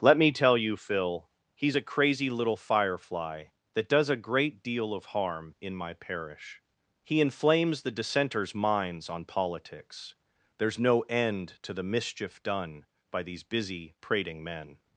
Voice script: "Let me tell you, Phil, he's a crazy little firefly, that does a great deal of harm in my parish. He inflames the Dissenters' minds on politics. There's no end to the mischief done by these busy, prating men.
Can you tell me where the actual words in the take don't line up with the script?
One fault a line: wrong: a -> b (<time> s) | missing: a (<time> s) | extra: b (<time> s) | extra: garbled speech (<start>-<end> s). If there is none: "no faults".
no faults